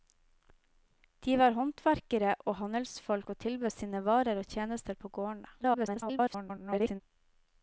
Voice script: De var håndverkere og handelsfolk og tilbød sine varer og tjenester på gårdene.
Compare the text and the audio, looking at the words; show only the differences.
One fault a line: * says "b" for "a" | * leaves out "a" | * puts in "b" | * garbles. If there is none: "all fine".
* garbles